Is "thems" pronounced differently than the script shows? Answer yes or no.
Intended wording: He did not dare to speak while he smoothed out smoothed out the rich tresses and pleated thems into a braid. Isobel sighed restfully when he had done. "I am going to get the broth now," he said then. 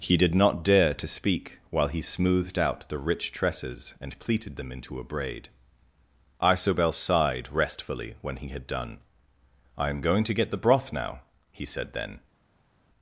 yes